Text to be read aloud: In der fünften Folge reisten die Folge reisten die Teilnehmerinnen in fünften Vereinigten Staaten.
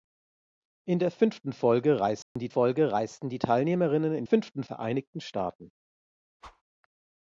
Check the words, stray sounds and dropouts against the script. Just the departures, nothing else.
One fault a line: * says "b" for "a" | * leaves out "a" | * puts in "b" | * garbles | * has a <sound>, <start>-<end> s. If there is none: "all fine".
* has a dropout, 2.2-2.4 s
* has a whoosh, 6.4-6.6 s